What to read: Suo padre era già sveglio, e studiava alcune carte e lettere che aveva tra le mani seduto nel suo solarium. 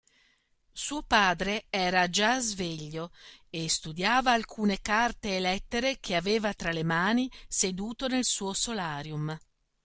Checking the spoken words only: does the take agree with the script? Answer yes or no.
yes